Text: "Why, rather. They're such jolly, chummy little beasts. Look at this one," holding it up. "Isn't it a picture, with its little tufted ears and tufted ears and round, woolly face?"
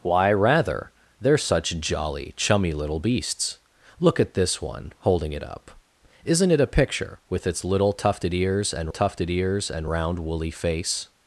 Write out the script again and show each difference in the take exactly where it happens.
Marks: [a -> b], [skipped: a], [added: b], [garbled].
"Why, rather. They're such jolly, chummy little beasts. Look at this one," holding it up. "Isn't it a picture, with its little tufted ears and tufted ears and round, woolly face?"